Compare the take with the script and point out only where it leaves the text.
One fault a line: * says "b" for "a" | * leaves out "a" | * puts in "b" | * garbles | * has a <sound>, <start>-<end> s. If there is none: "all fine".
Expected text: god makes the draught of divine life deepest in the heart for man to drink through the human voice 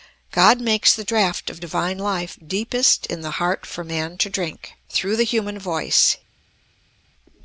all fine